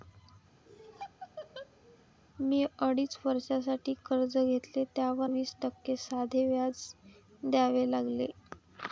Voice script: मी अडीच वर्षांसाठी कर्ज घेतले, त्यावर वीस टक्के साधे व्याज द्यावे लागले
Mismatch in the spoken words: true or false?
false